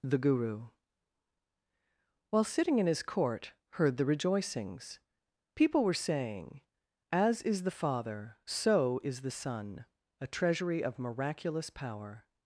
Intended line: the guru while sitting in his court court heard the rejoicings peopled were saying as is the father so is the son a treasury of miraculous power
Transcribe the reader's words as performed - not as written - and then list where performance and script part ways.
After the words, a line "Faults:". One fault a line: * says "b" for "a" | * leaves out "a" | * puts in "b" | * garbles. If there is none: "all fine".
the guru while sitting in his court heard the rejoicings people were saying as is the father so is the son a treasury of miraculous power
Faults:
* leaves out "court"
* says "people" for "peopled"